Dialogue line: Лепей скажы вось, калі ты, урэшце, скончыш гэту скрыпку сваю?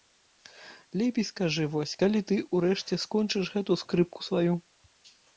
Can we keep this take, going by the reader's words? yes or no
yes